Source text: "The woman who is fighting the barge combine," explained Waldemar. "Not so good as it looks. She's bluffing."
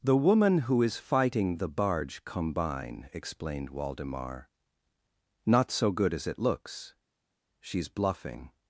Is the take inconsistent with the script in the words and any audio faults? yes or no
no